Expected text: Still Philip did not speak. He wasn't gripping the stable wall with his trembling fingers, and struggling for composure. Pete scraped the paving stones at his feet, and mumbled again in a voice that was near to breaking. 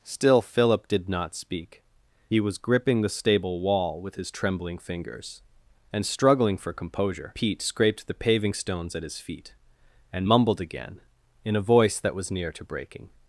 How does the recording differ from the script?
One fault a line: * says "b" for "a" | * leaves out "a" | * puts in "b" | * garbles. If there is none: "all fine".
* says "was" for "wasn't"